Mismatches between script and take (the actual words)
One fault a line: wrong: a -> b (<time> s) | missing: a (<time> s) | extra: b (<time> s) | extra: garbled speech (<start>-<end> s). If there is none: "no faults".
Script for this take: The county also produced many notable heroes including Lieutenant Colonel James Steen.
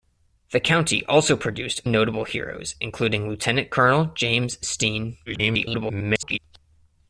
missing: many (1.9 s)
extra: garbled speech (5.3-6.4 s)